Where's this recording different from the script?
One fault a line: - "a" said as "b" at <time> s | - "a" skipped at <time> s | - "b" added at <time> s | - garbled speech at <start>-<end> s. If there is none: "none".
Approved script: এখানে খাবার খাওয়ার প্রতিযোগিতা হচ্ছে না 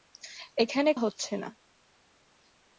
- "খাবার খাওয়ার প্রতিযোগিতা" skipped at 0.9 s